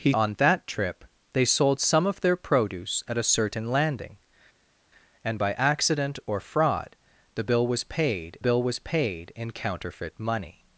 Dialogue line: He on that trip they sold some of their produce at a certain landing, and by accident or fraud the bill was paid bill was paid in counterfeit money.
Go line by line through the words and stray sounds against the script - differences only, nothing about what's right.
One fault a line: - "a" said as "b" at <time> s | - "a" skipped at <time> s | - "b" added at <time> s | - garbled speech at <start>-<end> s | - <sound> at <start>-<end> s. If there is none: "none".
none